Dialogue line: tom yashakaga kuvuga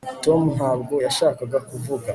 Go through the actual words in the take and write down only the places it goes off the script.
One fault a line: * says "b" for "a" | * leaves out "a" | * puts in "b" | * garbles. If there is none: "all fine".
* puts in "ntabwo"